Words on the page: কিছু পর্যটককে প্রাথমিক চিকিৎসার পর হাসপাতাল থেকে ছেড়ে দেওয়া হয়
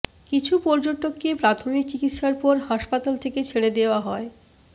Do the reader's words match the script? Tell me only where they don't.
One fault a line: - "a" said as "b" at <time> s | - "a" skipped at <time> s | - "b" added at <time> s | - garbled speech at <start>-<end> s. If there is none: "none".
none